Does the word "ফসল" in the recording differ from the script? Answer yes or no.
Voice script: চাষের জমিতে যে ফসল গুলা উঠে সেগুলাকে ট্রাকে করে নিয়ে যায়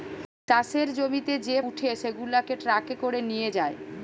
yes